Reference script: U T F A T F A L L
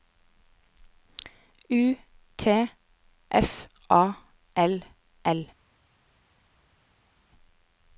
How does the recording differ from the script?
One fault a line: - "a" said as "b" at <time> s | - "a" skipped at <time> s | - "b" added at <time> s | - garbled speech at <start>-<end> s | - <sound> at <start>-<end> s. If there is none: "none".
- "T F A" skipped at 4.1 s